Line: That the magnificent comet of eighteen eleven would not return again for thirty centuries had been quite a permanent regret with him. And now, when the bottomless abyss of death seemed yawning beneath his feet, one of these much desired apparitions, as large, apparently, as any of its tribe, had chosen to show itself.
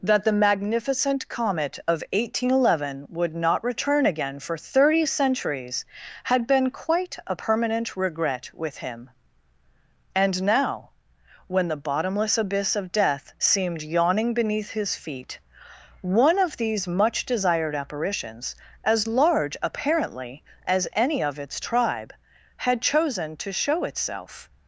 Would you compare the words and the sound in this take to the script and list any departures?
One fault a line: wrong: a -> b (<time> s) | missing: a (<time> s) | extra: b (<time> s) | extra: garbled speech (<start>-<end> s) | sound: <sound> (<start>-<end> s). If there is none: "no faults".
no faults